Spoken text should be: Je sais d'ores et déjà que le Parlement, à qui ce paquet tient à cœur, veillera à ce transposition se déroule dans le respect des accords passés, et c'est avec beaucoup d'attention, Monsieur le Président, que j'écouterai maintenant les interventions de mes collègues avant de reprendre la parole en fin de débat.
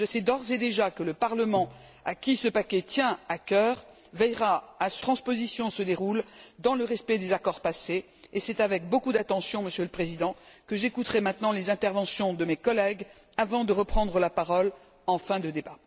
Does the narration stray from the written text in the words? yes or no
no